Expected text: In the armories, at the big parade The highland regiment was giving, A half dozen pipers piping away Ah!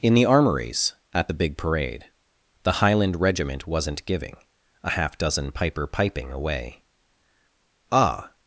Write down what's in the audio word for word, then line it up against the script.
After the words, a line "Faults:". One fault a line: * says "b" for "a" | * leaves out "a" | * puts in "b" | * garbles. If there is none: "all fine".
In the armories, at the big parade The highland regiment wasn't giving, A half dozen piper piping away Ah!
Faults:
* says "wasn't" for "was"
* says "piper" for "pipers"